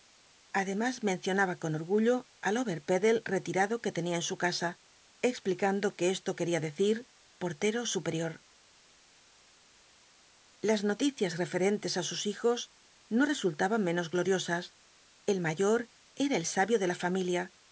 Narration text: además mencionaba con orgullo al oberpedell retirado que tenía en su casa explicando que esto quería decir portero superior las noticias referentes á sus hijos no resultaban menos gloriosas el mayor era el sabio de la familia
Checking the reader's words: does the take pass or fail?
pass